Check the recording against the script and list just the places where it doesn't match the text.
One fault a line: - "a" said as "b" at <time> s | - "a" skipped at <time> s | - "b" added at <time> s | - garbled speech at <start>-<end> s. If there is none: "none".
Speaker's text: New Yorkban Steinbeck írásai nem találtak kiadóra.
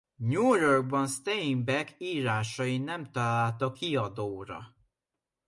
none